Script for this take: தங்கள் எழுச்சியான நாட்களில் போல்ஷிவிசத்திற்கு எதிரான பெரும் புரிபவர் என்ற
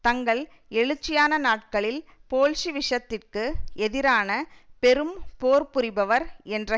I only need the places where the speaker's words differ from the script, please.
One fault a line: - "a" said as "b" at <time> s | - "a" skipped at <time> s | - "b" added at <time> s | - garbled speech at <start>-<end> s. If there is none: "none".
- "போர்" added at 5.4 s